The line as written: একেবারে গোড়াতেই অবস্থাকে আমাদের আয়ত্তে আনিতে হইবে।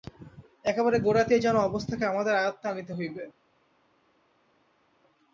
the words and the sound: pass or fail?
fail